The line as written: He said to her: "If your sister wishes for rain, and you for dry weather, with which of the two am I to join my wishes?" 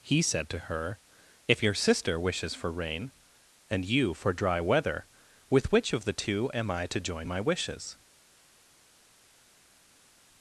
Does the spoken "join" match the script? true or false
true